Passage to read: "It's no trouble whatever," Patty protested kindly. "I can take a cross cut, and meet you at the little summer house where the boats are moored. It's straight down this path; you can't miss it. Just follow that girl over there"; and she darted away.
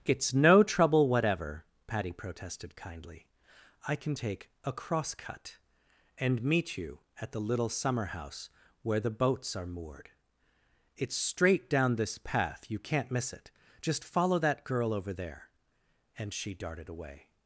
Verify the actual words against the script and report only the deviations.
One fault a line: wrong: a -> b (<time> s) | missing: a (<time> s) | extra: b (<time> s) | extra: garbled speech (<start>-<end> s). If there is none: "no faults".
no faults